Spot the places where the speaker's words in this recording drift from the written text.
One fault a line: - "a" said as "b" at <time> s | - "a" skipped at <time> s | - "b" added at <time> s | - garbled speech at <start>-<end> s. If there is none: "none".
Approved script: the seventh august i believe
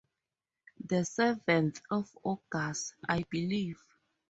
- "of" added at 1.9 s